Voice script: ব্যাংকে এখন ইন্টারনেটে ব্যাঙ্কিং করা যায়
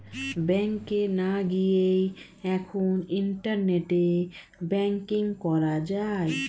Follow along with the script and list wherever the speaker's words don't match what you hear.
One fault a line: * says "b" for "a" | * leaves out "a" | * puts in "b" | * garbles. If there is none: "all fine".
* puts in "না গিয়েই"